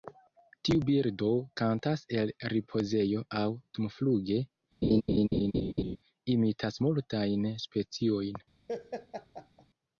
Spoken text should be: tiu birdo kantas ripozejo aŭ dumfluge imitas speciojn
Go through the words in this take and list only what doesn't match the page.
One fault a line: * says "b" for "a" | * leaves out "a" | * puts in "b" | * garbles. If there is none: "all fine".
* puts in "el"
* puts in "multajn"